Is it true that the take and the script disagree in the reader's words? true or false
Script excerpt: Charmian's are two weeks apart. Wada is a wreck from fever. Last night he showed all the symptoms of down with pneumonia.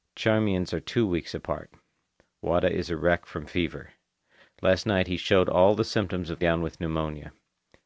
false